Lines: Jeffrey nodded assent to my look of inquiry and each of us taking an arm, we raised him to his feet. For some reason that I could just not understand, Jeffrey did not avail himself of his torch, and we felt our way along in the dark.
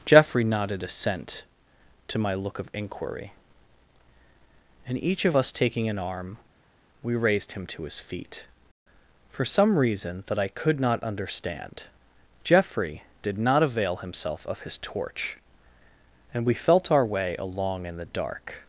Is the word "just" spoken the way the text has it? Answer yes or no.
no